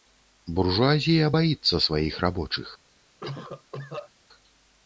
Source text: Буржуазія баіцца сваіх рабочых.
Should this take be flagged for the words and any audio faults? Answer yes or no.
yes